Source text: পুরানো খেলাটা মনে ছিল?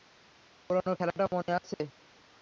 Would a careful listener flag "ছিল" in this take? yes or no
yes